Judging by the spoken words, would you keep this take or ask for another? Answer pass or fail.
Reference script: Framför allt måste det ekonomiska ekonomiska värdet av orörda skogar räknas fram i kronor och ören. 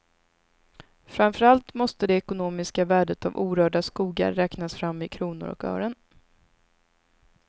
fail